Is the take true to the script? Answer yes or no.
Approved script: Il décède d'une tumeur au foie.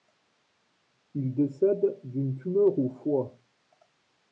yes